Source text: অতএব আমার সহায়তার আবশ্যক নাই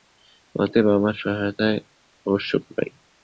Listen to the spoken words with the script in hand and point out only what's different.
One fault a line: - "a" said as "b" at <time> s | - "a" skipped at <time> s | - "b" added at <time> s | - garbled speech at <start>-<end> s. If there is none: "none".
none